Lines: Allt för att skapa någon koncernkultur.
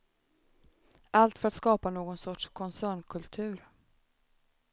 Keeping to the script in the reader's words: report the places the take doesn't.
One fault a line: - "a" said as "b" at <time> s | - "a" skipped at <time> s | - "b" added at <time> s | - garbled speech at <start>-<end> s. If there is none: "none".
- "sorts" added at 2.2 s